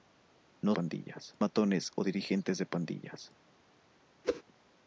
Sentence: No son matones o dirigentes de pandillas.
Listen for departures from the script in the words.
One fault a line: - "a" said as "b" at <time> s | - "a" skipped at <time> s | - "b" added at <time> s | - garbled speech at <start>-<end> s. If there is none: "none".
- "son" said as "pandillas" at 0.7 s